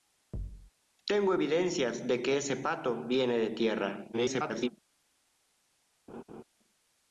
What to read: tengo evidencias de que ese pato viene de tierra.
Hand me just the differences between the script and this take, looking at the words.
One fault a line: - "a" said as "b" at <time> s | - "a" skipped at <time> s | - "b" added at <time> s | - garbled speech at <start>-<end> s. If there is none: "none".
- garbled speech at 4.1-4.7 s